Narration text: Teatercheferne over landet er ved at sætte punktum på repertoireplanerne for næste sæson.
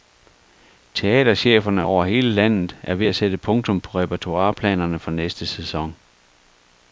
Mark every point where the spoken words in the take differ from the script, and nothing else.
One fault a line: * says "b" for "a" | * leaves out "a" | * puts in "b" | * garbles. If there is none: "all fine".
* puts in "hele"